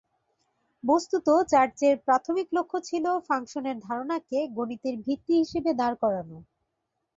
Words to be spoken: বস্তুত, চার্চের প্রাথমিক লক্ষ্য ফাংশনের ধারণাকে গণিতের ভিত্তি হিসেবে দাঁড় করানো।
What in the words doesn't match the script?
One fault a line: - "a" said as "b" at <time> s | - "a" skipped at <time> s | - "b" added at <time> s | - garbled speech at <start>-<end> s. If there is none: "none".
- "ছিল" added at 2.9 s